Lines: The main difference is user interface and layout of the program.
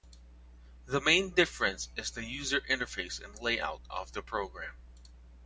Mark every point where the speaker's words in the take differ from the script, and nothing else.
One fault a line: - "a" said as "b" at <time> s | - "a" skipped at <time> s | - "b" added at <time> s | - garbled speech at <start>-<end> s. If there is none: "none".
- "the" added at 2.1 s